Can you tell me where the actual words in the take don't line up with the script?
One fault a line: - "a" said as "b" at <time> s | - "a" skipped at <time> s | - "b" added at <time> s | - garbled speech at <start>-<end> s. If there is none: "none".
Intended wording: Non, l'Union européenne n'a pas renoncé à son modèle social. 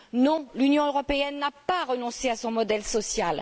none